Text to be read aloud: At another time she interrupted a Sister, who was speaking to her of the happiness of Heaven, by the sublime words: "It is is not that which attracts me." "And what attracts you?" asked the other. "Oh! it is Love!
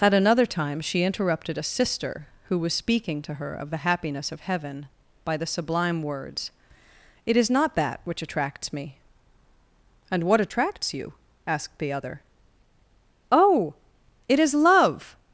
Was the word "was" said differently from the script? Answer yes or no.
no